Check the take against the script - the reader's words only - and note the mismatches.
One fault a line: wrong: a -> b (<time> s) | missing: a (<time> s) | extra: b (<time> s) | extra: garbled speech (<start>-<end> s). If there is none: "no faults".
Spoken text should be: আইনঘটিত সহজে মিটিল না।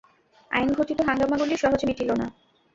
extra: হাঙ্গামাগুলি (1.1 s)